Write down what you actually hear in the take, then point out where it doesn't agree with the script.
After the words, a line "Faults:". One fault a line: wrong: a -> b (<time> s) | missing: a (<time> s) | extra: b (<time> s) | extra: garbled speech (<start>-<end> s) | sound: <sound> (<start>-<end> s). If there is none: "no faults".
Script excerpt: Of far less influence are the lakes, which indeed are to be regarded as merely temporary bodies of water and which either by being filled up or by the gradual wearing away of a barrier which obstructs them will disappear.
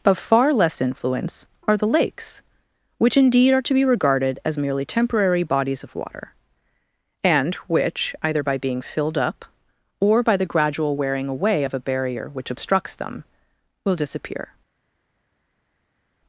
Of far less influence are the lakes, which indeed are to be regarded as merely temporary bodies of water and which either by being filled up or by the gradual wearing away of a barrier which obstructs them will disappear.
Faults:
no faults